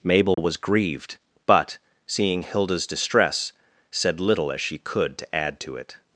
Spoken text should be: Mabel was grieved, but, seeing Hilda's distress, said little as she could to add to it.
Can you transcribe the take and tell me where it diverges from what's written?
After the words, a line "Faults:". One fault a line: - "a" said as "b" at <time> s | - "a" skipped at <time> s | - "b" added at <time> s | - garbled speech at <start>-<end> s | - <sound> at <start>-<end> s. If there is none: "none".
Mabel was grieved, but, seeing Hilda's distress, said little as she could to add to it.
Faults:
- dropout at 0.3-0.4 s